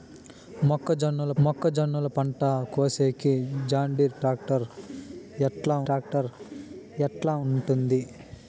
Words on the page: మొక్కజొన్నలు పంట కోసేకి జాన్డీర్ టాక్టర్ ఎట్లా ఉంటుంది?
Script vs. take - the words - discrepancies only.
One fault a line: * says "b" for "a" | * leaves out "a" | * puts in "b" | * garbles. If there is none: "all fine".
* puts in "మొక్కజొన్నలు"
* puts in "టాక్టర్ ఎట్లా"